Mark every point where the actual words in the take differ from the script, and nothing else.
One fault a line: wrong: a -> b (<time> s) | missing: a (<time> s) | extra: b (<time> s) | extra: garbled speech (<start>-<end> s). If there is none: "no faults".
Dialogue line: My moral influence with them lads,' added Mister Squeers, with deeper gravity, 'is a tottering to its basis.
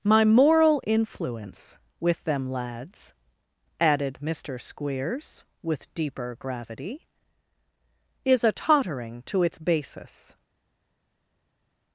no faults